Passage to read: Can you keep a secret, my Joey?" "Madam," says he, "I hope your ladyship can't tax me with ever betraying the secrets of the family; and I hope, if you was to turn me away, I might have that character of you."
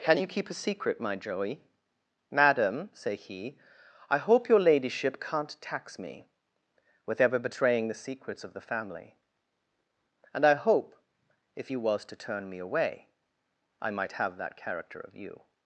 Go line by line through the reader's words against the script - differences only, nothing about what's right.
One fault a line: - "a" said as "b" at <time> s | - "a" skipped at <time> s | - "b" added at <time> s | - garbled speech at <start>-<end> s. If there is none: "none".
- "says" said as "say" at 2.9 s